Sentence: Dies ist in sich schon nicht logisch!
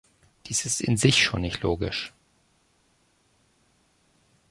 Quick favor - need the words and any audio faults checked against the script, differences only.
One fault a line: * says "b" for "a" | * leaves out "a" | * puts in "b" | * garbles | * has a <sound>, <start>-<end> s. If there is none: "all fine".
all fine